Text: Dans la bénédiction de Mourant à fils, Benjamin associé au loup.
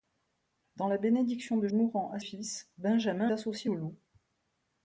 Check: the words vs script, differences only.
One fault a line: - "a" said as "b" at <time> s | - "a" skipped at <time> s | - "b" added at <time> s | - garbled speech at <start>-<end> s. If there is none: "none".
none